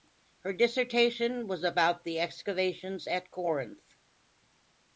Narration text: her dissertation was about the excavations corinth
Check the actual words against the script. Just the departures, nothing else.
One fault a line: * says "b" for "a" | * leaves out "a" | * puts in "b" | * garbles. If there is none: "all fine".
* puts in "at"